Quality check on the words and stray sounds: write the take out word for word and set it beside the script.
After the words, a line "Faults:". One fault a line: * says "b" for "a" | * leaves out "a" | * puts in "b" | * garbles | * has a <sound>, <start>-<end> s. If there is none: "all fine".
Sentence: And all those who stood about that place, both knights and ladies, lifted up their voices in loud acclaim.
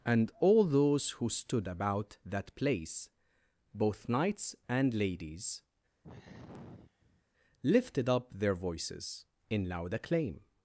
And all those who stood about that place, both knights and ladies, lifted up their voices in loud acclaim.
Faults:
* has a sigh, 6.0-7.3 s